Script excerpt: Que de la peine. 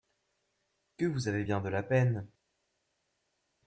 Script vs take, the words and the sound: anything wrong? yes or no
yes